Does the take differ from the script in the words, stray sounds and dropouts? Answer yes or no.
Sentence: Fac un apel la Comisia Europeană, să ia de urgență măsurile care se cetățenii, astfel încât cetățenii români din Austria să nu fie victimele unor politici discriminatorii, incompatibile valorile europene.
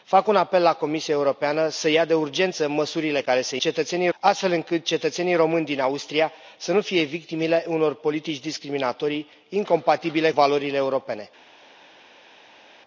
no